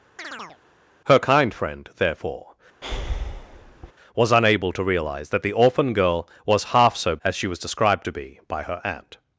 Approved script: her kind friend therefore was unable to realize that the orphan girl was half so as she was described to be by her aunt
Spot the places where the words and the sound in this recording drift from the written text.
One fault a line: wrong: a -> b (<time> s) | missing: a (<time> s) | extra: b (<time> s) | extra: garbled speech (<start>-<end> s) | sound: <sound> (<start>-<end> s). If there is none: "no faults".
sound: chirp (0.2-0.6 s)
sound: breath (2.8-3.9 s)